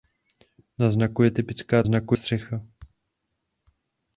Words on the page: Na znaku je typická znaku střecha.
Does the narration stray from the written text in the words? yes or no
no